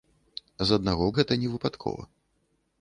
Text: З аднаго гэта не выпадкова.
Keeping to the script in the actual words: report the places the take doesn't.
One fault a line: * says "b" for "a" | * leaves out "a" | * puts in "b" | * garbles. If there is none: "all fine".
all fine